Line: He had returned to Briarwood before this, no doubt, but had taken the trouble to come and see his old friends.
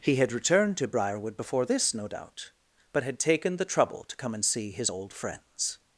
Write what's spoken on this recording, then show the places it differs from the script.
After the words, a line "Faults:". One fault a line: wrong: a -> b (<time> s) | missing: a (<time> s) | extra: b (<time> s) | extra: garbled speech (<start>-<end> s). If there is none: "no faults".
He had returned to Briarwood before this, no doubt, but had taken the trouble to come and see his old friends.
Faults:
no faults